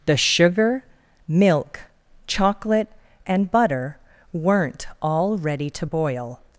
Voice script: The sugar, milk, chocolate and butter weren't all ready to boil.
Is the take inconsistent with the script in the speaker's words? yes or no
no